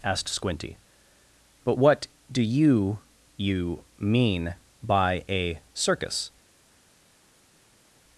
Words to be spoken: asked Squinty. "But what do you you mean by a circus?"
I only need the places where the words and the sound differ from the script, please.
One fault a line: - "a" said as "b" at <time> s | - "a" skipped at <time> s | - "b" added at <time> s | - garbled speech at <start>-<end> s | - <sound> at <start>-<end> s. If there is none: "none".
none